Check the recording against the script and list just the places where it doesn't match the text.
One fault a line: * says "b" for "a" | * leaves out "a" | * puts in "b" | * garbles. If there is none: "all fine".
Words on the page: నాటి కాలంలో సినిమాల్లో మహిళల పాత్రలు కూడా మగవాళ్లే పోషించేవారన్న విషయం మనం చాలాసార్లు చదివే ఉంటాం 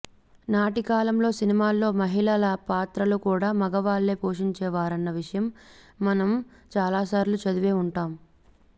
all fine